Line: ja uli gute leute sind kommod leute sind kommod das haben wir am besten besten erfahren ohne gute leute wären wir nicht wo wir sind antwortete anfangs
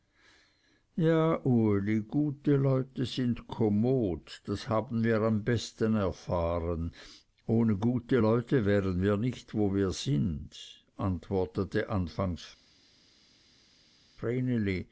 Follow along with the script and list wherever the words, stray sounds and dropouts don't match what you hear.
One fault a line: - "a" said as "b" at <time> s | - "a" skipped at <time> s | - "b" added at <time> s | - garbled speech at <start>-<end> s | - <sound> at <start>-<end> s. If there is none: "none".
- "leute sind kommod" skipped at 4.4 s
- "besten" skipped at 5.9 s